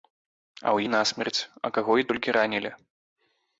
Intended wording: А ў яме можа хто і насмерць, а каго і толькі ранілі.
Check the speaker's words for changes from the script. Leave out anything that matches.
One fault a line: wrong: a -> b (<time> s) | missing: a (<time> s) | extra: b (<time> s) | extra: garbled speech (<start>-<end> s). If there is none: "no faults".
missing: яме можа хто (0.8 s)